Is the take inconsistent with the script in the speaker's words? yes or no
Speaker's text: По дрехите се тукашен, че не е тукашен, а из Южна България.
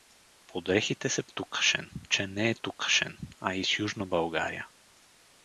no